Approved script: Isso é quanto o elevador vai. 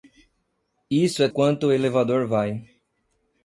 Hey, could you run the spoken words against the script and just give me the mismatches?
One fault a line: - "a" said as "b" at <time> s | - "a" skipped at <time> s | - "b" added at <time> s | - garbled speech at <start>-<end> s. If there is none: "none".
none